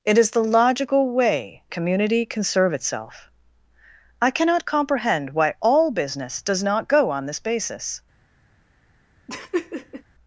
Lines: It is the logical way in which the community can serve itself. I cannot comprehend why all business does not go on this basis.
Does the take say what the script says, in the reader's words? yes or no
no